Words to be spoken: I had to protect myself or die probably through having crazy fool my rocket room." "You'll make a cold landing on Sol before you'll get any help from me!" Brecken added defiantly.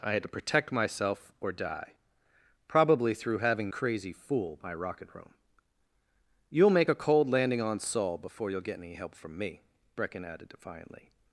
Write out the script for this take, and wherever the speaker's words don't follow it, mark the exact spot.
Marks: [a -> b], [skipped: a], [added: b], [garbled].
I had to protect myself or die probably through having crazy fool my rocket room." "You'll make a cold landing on Sol before you'll get any help from me!" Brecken added defiantly.